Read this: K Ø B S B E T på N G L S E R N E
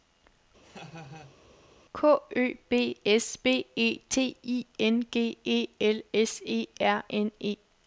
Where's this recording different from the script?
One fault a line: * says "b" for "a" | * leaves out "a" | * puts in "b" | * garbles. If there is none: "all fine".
* says "I" for "på"
* puts in "E"